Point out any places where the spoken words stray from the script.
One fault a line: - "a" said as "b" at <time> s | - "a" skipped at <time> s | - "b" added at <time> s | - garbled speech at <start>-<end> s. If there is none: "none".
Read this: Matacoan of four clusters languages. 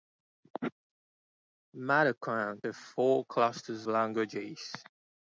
none